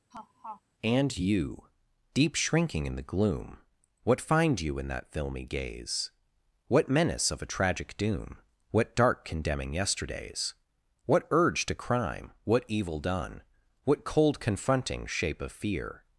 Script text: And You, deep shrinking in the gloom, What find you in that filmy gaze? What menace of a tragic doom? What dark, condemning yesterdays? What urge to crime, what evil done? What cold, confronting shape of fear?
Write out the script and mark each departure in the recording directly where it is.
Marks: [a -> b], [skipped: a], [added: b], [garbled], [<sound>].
[laugh] And You, deep shrinking in the gloom, What find you in that filmy gaze? What menace of a tragic doom? What dark, condemning yesterdays? What urge to crime, what evil done? What cold, confronting shape of fear?